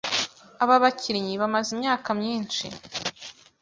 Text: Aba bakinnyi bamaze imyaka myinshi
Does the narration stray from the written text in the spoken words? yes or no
no